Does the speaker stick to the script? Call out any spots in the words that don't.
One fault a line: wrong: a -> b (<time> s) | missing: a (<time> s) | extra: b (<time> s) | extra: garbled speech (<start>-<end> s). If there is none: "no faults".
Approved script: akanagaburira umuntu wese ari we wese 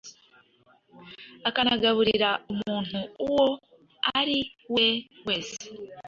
wrong: wese -> uwo (3.2 s)